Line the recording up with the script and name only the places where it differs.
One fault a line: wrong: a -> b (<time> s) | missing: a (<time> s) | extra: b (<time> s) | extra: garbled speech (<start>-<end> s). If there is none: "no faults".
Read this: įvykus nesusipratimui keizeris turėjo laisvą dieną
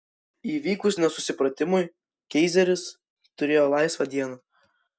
no faults